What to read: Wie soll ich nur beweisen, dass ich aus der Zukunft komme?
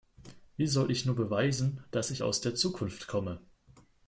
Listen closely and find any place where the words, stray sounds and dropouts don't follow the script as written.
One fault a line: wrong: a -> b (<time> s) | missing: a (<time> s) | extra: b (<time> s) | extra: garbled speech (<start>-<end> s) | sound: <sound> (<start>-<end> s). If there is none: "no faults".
no faults